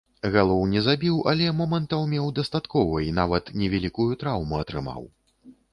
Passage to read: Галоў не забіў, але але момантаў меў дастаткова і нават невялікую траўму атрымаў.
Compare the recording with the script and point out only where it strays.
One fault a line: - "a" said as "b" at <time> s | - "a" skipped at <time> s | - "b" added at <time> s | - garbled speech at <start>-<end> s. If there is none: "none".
- "але" skipped at 1.5 s